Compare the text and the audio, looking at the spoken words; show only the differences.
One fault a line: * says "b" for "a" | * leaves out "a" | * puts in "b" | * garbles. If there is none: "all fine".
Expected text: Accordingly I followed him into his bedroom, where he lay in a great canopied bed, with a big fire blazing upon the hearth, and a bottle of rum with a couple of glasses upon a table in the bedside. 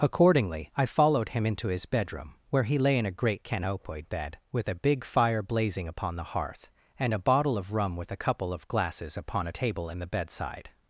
all fine